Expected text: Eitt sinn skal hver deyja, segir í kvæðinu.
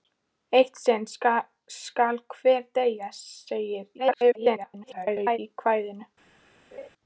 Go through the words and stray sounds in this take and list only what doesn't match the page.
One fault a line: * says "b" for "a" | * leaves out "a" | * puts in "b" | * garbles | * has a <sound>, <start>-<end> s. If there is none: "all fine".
* garbles
* has a laugh, 6.7-6.9 s